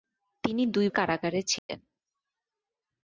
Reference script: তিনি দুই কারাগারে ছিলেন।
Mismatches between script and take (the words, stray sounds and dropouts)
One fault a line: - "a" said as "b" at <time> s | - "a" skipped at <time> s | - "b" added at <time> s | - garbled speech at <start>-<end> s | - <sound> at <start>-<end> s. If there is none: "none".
- dropout at 1.6-1.7 s